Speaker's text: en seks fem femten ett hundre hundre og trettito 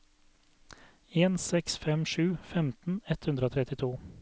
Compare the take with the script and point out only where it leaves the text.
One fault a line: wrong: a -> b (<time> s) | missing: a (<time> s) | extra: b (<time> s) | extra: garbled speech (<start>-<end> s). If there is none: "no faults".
extra: sju (2.1 s)
missing: hundre (3.5 s)